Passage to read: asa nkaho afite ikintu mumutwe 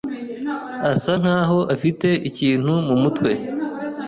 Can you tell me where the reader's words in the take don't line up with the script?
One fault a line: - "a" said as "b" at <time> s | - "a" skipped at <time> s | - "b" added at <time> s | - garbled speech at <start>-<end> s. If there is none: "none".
none